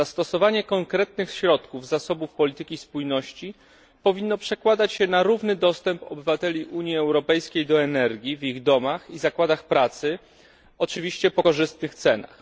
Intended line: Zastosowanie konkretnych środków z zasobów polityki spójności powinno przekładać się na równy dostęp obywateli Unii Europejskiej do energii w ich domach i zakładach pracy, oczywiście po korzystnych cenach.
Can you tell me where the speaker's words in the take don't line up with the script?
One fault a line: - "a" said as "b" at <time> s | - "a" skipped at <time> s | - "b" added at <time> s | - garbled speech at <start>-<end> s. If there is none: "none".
none